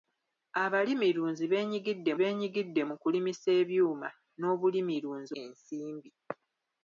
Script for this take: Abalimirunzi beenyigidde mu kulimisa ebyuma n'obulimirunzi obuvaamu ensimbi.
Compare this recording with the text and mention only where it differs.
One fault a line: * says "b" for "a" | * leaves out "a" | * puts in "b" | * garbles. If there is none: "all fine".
* puts in "beenyigidde"
* leaves out "obuvaamu"